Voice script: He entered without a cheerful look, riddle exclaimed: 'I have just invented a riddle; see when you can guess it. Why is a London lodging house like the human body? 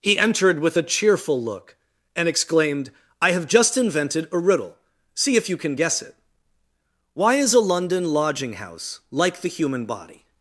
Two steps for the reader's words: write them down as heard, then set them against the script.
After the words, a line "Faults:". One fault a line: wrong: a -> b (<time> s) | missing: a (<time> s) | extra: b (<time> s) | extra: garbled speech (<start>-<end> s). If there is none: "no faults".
He entered with a cheerful look, and exclaimed: 'I have just invented a riddle; see if you can guess it. Why is a London lodging house like the human body?
Faults:
wrong: without -> with (0.6 s)
wrong: riddle -> and (2.2 s)
wrong: when -> if (5.4 s)